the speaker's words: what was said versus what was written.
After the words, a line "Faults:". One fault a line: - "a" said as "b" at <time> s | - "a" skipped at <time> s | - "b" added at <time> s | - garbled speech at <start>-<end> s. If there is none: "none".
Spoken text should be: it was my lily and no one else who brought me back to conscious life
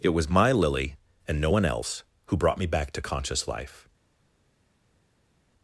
it was my lily and no one else who brought me back to conscious life
Faults:
none